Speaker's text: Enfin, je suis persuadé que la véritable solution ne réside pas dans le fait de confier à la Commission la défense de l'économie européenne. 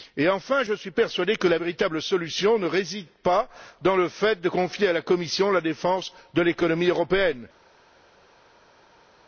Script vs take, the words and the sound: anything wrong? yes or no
no